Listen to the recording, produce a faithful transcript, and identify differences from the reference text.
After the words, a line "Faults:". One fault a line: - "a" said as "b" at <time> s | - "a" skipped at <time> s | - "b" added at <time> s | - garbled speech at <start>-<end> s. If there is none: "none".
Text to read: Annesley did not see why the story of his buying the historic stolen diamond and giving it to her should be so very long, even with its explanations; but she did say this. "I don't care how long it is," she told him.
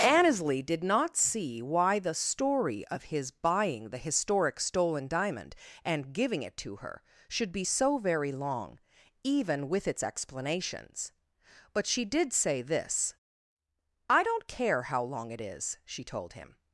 Annesley did not see why the story of his buying the historic stolen diamond and giving it to her should be so very long, even with its explanations; but she did say this. "I don't care how long it is," she told him.
Faults:
none